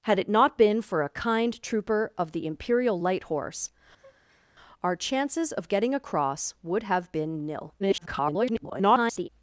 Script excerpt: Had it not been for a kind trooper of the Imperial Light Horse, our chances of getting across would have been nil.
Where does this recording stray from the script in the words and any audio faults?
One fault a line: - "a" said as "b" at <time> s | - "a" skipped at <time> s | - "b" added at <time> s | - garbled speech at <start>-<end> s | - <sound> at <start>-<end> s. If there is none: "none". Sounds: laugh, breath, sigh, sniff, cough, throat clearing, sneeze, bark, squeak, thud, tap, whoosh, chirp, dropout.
- breath at 4.0-4.5 s
- garbled speech at 7.8-9.3 s